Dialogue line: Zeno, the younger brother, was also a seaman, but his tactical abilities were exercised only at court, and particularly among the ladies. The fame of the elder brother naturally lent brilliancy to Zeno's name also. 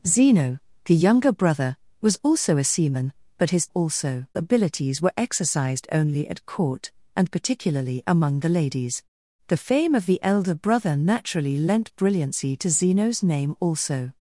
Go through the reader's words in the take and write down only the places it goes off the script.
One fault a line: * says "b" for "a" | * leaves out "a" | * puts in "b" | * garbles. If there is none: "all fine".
* says "also" for "tactical"